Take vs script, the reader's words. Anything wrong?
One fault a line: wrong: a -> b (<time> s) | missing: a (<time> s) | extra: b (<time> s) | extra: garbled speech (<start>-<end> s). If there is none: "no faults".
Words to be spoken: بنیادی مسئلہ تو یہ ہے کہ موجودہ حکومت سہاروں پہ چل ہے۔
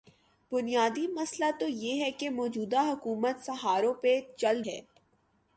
no faults